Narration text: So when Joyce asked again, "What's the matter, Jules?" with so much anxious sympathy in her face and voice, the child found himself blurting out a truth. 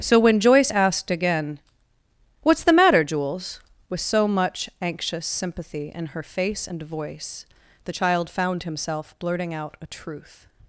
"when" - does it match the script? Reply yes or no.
yes